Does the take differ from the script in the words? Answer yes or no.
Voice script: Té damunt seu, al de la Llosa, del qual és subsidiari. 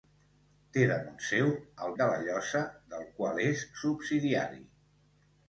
no